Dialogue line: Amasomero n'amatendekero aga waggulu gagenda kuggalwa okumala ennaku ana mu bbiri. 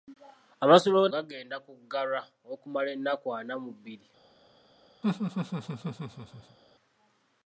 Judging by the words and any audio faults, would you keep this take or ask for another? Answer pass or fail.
fail